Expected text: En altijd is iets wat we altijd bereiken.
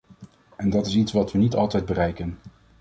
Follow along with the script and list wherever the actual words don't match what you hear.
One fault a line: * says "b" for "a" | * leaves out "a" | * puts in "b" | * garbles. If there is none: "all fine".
* says "dat" for "altijd"
* puts in "niet"